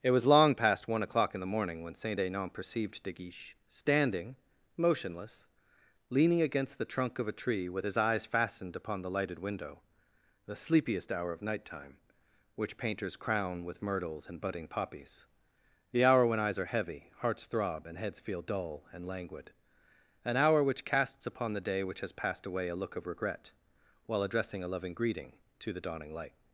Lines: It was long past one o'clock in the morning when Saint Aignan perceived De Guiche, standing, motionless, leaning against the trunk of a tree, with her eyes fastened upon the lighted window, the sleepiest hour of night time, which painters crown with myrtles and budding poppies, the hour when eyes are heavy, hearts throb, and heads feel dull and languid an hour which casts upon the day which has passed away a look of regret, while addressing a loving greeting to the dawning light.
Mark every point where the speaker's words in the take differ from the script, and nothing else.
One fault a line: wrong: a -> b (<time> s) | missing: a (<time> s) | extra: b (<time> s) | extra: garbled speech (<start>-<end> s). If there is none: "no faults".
wrong: her -> his (7.8 s)